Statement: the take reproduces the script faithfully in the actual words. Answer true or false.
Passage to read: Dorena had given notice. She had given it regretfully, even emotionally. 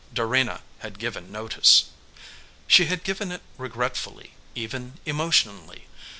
true